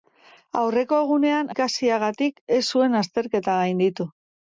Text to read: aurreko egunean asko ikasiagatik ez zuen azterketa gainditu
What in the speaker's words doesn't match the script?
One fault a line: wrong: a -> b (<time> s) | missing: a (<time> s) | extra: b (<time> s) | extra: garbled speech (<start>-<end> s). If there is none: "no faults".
missing: asko (1.5 s)